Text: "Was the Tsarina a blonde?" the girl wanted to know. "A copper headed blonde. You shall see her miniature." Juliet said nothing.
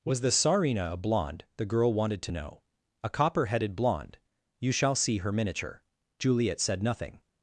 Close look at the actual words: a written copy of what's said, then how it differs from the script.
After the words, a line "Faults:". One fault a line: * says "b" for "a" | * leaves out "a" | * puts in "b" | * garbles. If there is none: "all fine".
"Was the Tsarina a blonde?" the girl wanted to know. "A copper headed blonde. You shall see her miniature." Juliet said nothing.
Faults:
all fine